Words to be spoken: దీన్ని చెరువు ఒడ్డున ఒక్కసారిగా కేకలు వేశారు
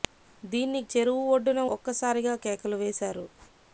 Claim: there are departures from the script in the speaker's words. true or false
false